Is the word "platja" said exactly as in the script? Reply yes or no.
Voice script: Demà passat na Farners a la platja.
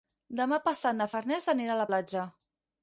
yes